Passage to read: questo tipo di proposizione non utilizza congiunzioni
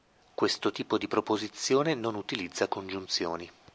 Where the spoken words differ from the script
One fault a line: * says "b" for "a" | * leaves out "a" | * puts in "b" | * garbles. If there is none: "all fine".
all fine